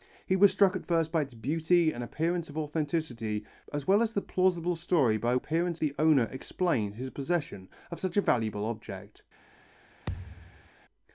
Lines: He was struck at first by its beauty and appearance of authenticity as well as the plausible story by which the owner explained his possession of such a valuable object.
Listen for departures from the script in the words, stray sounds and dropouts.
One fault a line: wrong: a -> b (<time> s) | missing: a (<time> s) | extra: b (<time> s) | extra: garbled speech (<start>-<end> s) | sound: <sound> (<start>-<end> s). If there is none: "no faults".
wrong: which -> appearance (5.3 s)
sound: thud (10.1-10.7 s)